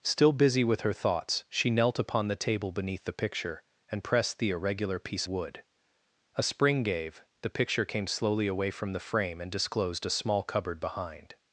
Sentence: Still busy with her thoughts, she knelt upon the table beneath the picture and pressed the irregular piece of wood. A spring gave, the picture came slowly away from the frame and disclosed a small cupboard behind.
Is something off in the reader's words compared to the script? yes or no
yes